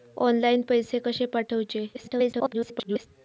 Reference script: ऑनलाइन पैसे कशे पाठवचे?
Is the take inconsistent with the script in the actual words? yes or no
yes